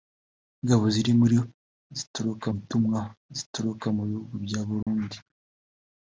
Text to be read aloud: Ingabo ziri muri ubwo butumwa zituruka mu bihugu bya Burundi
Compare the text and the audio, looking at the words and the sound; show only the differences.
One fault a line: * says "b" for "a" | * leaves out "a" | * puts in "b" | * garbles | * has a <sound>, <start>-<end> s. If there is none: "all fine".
* says "zituruka" for "ubwo"
* has a dropout, 4.8-4.9 s